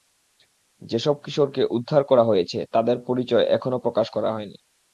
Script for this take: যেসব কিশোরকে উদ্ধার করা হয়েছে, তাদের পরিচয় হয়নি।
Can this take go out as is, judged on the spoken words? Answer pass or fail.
fail